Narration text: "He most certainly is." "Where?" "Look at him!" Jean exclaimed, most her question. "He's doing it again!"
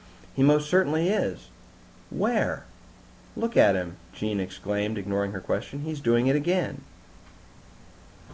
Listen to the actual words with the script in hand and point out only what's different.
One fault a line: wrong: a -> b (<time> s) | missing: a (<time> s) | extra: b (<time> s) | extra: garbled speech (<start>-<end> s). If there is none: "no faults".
wrong: most -> ignoring (5.0 s)